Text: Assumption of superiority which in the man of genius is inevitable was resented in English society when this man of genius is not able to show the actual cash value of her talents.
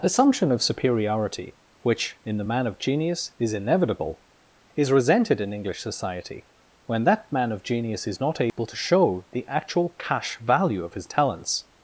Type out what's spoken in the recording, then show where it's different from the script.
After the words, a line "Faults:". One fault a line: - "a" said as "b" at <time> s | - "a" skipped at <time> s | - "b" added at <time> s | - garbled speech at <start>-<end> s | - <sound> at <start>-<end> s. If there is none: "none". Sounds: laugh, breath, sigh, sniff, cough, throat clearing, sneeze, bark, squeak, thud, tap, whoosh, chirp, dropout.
Assumption of superiority which in the man of genius is inevitable is resented in English society when that man of genius is not able to show the actual cash value of his talents.
Faults:
- "was" said as "is" at 4.7 s
- "this" said as "that" at 7.0 s
- dropout at 8.5-8.6 s
- "her" said as "his" at 10.9 s